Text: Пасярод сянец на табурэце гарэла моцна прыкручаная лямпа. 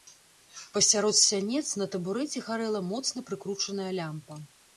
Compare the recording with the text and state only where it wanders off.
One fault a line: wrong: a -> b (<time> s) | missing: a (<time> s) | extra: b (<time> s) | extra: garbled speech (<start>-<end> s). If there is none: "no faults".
no faults